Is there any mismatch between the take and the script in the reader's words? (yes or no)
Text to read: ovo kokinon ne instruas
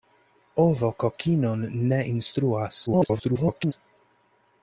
yes